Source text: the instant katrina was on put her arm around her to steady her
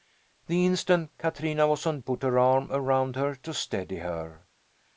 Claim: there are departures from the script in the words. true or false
false